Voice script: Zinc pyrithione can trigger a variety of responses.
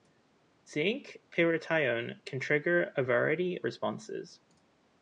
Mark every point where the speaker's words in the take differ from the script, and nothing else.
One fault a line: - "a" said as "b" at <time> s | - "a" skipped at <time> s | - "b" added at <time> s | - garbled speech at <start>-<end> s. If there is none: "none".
- "of" skipped at 3.6 s